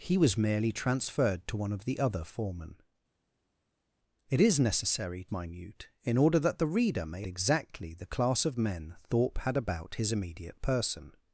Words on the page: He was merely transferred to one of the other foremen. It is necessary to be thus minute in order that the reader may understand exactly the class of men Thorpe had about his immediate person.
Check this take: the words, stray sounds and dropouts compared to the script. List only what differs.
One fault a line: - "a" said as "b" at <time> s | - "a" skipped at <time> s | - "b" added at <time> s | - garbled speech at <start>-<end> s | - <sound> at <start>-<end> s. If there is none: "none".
- "to be thus" skipped at 5.3 s
- "understand" skipped at 7.3 s